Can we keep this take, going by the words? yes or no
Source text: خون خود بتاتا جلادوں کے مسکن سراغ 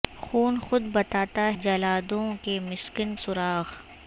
yes